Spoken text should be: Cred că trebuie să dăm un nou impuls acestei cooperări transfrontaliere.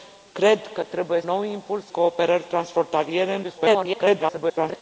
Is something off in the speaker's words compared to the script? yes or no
yes